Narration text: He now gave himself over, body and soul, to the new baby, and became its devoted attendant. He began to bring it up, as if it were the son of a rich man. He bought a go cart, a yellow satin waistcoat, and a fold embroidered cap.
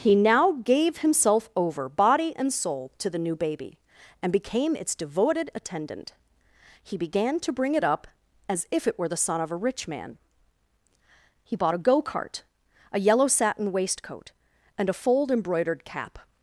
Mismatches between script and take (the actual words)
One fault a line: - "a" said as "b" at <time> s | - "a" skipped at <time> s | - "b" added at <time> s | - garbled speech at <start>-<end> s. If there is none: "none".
none